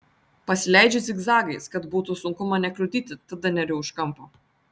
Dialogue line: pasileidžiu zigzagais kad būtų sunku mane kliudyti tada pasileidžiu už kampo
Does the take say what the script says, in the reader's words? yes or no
no